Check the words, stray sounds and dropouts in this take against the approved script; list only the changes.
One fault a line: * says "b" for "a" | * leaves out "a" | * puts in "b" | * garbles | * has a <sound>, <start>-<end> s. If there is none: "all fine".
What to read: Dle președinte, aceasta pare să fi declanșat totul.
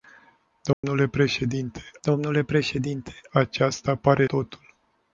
* has a dropout, 0.7-0.8 s
* puts in "dle președinte"
* leaves out "să fi declanșat"